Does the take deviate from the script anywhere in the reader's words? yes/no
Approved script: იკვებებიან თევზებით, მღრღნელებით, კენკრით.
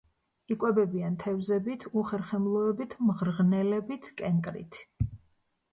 yes